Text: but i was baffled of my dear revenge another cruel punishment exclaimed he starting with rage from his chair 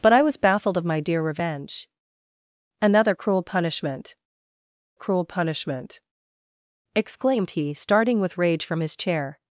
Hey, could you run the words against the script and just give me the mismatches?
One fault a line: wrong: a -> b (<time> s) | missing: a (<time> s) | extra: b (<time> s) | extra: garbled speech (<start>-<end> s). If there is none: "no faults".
extra: cruel punishment (4.9 s)